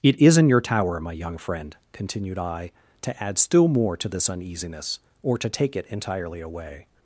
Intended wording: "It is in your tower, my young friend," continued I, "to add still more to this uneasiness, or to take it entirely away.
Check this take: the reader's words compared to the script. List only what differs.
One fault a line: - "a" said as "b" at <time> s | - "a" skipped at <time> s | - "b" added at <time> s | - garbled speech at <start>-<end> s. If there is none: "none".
none